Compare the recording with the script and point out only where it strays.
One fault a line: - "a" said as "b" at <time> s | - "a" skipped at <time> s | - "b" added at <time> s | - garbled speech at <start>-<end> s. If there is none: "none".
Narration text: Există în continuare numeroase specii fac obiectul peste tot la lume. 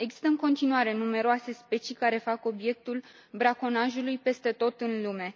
- "care" added at 1.9 s
- "braconajului" added at 3.3 s
- "la" said as "în" at 4.8 s